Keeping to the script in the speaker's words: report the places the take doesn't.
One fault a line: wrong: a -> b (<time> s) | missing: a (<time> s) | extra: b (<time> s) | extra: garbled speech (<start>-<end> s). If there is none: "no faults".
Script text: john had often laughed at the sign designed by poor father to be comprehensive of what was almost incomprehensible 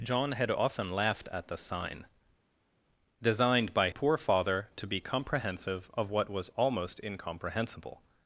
no faults